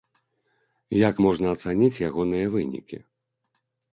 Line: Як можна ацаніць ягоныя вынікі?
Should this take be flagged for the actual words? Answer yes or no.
no